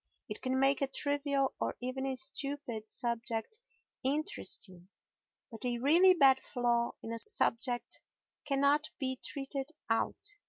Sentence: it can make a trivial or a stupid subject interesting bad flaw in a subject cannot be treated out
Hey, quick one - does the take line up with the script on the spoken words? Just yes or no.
no